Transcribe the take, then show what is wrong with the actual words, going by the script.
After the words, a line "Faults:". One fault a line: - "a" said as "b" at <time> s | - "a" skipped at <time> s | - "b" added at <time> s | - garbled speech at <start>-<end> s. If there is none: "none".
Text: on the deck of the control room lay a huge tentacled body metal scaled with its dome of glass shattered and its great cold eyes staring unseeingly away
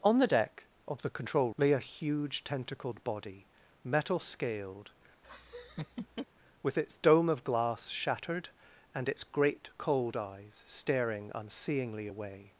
on the deck of the control lay a huge tentacled body metal scaled with its dome of glass shattered and its great cold eyes staring unseeingly away
Faults:
- "room" skipped at 1.5 s